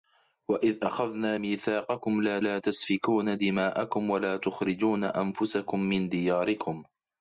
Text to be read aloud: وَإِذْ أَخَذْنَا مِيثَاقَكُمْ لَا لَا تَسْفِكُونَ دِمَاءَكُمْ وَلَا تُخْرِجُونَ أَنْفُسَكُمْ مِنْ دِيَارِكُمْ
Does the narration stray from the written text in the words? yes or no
no